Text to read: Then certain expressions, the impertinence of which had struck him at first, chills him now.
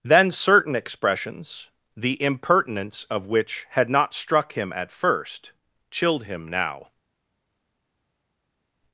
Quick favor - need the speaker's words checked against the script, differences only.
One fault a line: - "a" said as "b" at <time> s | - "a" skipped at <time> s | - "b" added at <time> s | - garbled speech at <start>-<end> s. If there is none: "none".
- "not" added at 3.9 s
- "chills" said as "chilled" at 5.9 s